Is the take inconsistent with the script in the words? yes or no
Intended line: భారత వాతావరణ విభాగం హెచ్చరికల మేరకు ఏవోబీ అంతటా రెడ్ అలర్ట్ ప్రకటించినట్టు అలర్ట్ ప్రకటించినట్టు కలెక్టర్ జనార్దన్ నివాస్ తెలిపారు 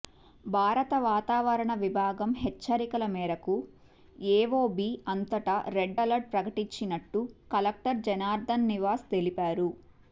yes